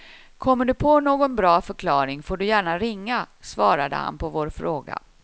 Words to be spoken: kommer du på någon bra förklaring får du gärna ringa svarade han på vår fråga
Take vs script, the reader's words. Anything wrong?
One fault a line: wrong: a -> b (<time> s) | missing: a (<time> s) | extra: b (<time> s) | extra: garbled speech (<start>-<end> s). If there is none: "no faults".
no faults